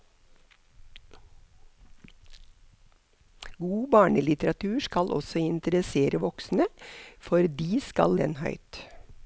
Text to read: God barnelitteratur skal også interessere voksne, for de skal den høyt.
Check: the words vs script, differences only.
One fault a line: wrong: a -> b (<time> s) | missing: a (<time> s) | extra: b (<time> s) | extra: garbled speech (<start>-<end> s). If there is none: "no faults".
no faults